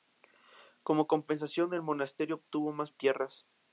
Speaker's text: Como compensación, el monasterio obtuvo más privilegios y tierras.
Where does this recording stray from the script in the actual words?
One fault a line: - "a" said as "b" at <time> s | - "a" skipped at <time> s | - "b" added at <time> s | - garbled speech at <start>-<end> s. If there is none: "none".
- "privilegios" skipped at 2.9 s